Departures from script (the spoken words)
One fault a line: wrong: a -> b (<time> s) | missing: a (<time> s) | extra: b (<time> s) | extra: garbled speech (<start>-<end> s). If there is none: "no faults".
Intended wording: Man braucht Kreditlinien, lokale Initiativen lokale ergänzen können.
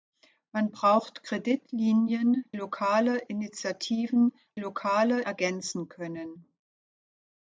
no faults